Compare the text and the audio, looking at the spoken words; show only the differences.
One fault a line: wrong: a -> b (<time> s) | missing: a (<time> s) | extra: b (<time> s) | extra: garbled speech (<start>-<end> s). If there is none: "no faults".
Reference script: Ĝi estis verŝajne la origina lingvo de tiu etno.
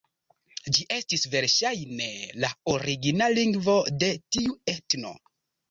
no faults